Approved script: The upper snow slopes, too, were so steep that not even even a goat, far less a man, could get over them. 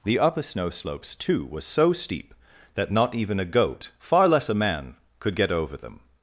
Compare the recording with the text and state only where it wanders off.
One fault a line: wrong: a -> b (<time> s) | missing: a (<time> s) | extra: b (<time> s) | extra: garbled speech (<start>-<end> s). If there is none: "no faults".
missing: even (3.4 s)